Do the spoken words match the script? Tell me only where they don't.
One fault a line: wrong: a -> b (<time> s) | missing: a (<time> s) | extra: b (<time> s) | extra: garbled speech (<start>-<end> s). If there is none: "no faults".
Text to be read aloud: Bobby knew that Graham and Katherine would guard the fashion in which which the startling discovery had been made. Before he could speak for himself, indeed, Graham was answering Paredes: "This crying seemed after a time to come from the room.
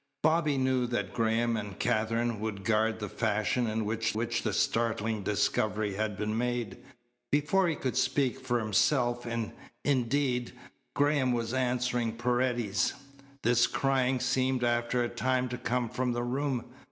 no faults